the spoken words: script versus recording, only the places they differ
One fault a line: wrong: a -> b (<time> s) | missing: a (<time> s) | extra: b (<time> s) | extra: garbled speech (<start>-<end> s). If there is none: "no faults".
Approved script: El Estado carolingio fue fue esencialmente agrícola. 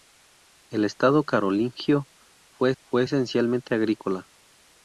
no faults